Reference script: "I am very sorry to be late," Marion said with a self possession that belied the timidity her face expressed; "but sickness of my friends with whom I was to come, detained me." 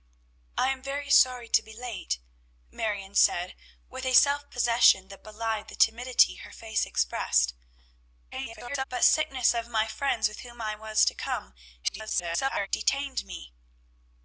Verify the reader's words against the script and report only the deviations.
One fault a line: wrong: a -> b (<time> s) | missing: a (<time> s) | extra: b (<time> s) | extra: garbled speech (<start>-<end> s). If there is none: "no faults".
extra: garbled speech (8.3-8.8 s)
extra: garbled speech (11.8-12.7 s)